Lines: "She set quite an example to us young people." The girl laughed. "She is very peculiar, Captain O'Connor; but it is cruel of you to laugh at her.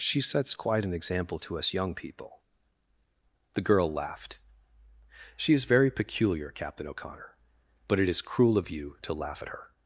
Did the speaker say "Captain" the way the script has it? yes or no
yes